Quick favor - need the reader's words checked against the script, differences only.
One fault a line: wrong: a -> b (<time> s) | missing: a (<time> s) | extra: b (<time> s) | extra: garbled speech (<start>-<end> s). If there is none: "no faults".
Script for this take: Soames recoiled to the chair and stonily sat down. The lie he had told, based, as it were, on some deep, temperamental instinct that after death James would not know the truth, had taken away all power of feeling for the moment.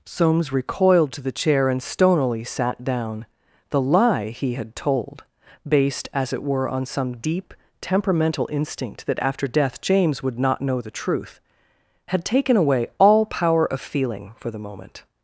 no faults